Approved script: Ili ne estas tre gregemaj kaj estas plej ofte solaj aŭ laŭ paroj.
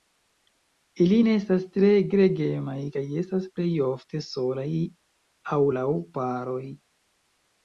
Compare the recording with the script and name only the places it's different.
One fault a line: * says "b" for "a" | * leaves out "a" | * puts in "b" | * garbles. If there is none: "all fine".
all fine